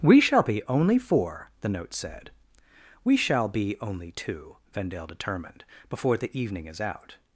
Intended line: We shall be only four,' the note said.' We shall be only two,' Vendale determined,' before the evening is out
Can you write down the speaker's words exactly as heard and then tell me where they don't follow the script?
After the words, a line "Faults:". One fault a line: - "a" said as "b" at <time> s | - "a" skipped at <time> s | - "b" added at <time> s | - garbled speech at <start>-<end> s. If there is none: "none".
We shall be only four,' the note said.' We shall be only two,' Vendale determined,' before the evening is out
Faults:
none